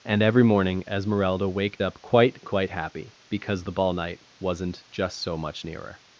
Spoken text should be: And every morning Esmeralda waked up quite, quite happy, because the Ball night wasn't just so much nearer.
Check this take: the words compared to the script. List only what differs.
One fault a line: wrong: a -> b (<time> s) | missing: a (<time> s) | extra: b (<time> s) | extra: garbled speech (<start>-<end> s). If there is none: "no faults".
no faults